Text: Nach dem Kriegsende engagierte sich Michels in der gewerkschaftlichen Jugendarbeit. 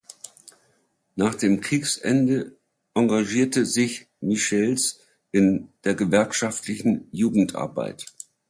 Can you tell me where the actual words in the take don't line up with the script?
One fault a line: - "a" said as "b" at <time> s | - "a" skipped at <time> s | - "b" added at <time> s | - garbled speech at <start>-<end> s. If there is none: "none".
none